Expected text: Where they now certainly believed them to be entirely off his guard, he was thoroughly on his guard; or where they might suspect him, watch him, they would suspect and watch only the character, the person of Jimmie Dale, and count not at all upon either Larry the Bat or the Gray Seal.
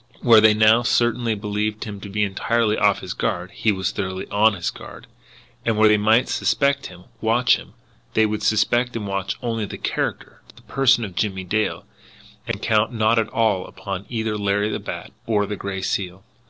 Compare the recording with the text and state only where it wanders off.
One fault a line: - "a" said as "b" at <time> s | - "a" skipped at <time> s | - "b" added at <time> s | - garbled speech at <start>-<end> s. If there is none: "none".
- "them" said as "him" at 1.8 s
- "or" said as "and" at 5.6 s